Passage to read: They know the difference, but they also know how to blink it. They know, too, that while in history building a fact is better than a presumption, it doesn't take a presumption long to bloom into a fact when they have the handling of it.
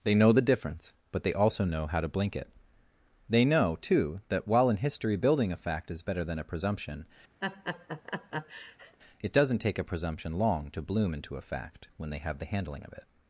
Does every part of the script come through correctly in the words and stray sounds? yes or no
no